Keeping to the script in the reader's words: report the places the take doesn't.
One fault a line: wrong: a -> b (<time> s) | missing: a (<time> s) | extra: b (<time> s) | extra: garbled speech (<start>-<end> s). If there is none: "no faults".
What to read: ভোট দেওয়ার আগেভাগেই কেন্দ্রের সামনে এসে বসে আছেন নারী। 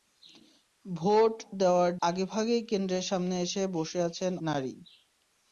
no faults